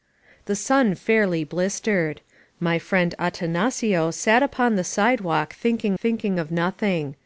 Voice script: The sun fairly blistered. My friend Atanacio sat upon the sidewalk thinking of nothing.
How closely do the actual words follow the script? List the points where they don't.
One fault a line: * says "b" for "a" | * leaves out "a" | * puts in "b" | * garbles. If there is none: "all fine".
* puts in "thinking"